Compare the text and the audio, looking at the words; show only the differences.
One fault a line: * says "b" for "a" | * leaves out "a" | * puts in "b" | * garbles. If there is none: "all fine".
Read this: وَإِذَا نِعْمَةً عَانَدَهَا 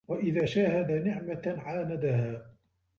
* puts in "شَاهَدَ"